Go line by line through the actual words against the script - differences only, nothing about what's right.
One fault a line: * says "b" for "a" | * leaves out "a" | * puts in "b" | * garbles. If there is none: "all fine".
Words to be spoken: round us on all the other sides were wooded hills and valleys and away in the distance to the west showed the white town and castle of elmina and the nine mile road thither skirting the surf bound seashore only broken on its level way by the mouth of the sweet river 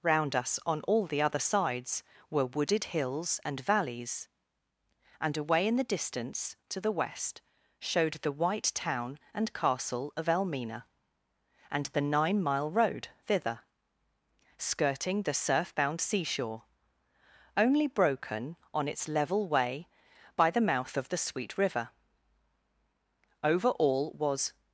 * puts in "over all was"